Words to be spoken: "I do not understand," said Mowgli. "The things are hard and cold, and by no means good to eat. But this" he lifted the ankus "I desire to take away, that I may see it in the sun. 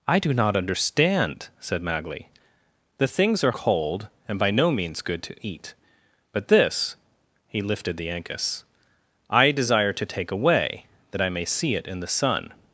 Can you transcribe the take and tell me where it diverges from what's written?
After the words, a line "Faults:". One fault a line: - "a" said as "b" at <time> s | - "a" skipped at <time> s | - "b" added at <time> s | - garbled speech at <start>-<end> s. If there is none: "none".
"I do not understand," said Mowgli. "The things are cold, and by no means good to eat. But this" he lifted the ankus "I desire to take away, that I may see it in the sun.
Faults:
- "hard and" skipped at 3.5 s